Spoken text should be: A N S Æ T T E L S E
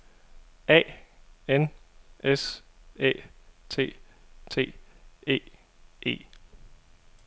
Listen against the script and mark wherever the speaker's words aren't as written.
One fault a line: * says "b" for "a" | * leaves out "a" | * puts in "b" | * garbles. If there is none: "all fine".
* leaves out "L S"